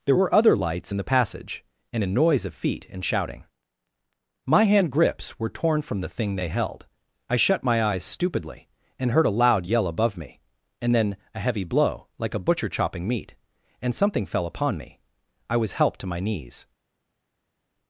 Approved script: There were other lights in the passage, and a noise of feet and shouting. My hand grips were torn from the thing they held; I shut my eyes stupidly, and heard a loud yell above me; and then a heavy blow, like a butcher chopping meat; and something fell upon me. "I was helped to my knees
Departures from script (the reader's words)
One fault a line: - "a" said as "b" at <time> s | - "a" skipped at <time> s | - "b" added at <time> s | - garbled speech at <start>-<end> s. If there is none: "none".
none